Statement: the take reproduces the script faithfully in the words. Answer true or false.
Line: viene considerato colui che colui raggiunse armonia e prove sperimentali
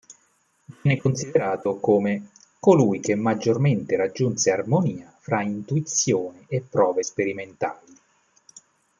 false